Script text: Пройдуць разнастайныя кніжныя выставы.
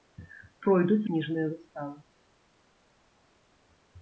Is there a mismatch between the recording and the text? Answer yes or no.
yes